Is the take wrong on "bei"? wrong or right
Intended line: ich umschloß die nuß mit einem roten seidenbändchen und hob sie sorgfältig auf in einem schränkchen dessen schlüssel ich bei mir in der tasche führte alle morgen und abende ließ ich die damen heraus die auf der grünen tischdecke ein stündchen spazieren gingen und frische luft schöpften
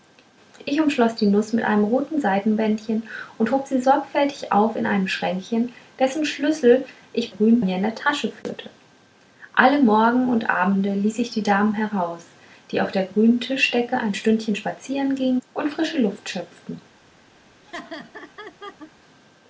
wrong